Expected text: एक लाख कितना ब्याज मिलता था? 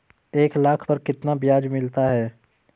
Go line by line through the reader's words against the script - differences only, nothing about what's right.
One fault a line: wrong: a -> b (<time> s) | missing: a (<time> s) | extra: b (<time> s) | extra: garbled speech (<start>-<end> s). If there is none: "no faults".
extra: पर (0.8 s)
wrong: था -> है (2.1 s)